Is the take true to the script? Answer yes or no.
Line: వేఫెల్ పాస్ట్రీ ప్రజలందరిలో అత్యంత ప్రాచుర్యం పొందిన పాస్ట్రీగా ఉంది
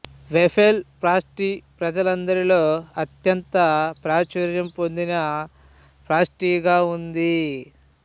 yes